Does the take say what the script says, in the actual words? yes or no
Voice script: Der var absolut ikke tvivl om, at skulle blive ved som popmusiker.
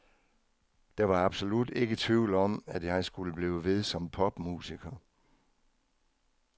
no